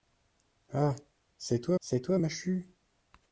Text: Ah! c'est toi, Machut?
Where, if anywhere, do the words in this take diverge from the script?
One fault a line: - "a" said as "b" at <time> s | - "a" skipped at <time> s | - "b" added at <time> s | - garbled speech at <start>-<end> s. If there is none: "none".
- "c'est toi" added at 1.8 s